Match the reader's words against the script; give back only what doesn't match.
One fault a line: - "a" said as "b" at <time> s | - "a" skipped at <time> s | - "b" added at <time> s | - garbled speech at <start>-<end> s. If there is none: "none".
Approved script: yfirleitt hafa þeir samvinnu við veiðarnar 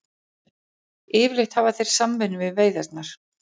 none